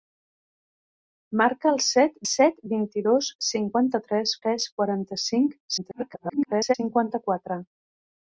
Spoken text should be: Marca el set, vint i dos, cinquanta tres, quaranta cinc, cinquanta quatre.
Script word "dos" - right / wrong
right